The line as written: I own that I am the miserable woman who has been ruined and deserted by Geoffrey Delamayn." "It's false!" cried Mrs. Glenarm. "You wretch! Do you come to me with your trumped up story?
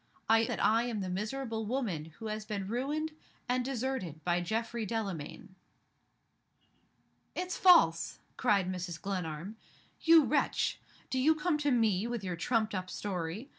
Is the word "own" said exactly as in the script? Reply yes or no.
no